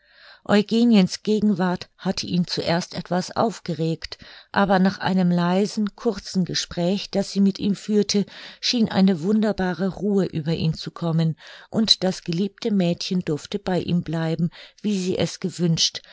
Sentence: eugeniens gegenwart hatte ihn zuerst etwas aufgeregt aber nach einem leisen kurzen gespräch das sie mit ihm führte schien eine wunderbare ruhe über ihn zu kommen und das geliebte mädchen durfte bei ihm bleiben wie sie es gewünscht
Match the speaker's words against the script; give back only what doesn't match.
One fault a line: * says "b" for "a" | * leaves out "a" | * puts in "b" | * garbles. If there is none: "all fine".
all fine